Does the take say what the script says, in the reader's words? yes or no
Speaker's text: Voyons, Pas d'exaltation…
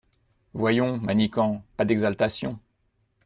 no